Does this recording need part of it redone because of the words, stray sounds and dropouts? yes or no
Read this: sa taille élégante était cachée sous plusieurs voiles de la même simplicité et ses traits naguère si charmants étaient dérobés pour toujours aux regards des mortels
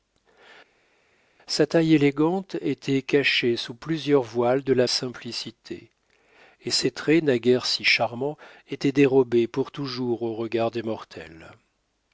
yes